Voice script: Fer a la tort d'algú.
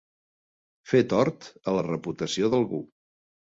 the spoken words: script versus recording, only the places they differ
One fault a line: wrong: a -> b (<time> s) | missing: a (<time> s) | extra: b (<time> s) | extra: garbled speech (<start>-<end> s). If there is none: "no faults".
extra: tort (1.1 s)
wrong: tort -> reputació (1.9 s)